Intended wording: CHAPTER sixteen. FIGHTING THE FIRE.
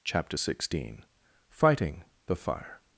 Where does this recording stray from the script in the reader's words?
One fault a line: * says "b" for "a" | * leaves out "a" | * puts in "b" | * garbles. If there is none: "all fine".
all fine